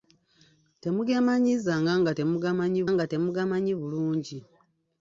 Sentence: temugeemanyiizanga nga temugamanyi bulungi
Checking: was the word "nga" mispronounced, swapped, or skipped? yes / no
no